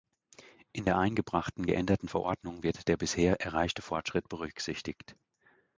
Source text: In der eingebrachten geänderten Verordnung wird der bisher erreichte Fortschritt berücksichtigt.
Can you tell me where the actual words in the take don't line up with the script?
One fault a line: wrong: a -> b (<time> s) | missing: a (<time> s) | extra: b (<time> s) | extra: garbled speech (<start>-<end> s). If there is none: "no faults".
no faults